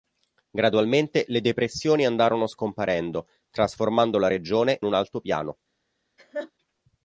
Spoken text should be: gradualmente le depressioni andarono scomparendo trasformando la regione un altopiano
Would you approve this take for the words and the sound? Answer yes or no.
no